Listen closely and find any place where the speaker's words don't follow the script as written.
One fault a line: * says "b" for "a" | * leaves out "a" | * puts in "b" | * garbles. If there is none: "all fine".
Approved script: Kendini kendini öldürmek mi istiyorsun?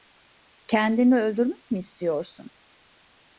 * leaves out "kendini"